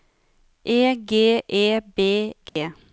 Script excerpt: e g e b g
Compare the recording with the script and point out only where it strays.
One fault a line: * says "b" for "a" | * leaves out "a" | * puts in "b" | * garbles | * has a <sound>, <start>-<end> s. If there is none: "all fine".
* has a dropout, 2.5-2.6 s